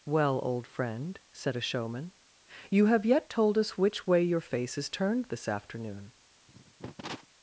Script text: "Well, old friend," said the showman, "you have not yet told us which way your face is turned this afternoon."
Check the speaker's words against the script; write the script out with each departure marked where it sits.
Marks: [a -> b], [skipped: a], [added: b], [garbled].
"Well, old friend," said [the -> a] showman, "you have [skipped: not] yet told us which way your face is turned this afternoon."